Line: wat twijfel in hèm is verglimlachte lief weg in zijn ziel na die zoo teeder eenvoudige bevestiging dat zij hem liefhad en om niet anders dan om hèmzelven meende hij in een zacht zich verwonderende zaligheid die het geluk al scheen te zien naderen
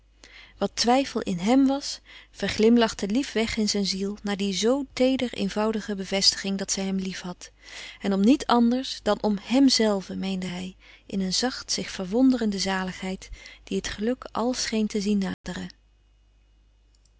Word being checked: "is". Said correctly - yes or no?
no